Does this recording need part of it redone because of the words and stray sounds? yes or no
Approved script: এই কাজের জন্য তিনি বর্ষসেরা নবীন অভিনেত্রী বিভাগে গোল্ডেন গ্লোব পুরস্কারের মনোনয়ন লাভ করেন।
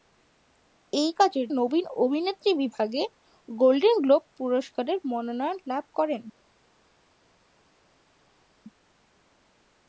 yes